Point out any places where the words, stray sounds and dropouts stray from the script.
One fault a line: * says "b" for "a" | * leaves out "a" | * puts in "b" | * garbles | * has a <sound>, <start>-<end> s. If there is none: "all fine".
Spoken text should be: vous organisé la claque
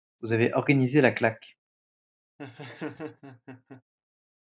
* puts in "avez"
* has a laugh, 2.4-3.8 s